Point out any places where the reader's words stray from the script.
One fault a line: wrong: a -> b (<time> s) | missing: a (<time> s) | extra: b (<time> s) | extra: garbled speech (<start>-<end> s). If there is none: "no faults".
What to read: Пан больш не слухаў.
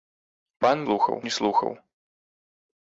wrong: больш -> слухаў (0.8 s)